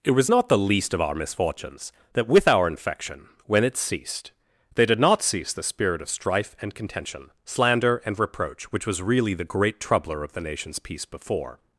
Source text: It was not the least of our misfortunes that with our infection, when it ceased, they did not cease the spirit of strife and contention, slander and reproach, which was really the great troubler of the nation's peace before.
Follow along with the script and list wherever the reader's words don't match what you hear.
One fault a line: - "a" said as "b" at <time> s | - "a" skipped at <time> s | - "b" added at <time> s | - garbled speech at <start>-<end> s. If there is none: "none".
none